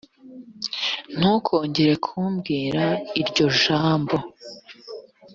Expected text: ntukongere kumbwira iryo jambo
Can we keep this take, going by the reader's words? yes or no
yes